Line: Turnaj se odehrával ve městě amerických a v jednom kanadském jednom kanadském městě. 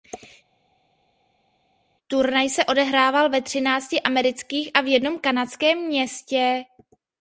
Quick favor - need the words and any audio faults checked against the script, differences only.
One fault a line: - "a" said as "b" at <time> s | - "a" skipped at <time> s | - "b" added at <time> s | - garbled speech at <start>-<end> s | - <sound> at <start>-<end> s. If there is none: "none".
- "městě" said as "třinácti" at 3.4 s
- "jednom kanadském" skipped at 5.8 s